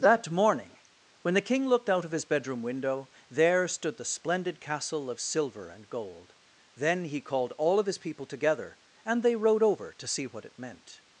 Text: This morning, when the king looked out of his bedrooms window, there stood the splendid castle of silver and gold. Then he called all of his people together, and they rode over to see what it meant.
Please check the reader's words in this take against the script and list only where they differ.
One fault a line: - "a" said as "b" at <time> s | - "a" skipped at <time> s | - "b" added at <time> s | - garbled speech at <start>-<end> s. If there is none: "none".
- "This" said as "That" at 0.0 s
- "bedrooms" said as "bedroom" at 2.2 s